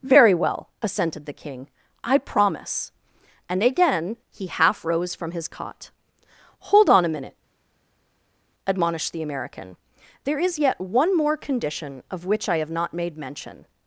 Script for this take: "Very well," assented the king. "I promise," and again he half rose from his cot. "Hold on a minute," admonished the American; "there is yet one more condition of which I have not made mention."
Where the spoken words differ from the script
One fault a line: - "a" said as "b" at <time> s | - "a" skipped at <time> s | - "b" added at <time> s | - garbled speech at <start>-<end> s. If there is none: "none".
none